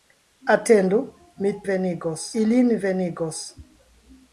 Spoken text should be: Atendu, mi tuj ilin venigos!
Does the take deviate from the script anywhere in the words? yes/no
yes